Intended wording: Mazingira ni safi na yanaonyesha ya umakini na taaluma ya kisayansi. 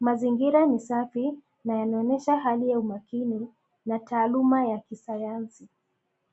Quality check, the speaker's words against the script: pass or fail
fail